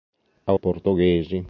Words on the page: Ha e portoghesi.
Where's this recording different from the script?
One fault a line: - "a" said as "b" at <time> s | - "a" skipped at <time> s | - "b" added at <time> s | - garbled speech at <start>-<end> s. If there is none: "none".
none